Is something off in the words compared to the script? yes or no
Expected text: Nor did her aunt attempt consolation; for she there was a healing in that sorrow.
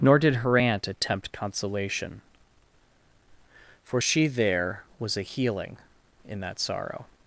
no